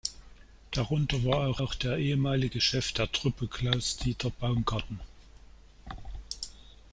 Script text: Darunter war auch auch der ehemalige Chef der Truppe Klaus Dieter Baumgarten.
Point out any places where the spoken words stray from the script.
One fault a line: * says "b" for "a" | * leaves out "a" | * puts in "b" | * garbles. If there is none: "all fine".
all fine